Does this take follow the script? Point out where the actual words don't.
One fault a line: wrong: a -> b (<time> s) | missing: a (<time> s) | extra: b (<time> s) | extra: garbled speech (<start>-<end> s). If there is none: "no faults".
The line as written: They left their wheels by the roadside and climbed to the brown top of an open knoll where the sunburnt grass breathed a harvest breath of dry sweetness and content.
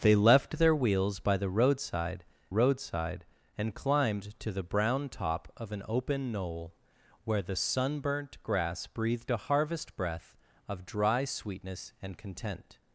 extra: roadside (2.5 s)